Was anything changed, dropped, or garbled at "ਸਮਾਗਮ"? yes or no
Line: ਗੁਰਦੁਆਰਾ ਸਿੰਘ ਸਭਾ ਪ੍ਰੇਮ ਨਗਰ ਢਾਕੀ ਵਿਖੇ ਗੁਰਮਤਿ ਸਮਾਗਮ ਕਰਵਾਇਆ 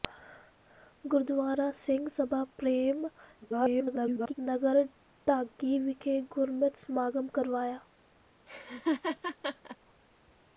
no